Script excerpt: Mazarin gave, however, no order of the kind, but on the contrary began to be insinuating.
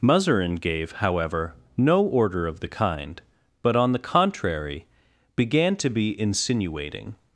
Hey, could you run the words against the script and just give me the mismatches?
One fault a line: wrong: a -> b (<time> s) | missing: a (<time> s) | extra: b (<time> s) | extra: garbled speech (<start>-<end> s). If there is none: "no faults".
no faults